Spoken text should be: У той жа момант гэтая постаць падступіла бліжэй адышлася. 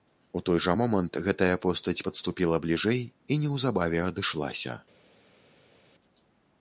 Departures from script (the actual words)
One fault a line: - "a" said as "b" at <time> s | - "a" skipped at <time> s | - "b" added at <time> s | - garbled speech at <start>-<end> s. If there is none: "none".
- "і неўзабаве" added at 3.3 s